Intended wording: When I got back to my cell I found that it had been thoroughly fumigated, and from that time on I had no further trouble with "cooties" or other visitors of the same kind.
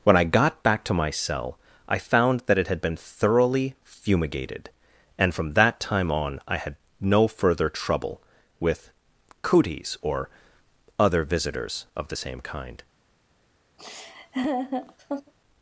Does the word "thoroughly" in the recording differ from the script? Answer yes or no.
no